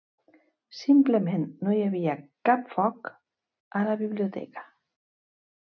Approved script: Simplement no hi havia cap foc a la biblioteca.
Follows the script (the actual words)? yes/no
yes